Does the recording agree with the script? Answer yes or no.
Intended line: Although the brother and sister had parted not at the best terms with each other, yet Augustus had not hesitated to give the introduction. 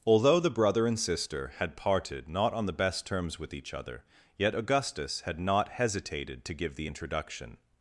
no